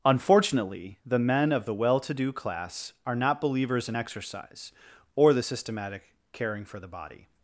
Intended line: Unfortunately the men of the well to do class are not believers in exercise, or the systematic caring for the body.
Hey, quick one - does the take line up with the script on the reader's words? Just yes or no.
yes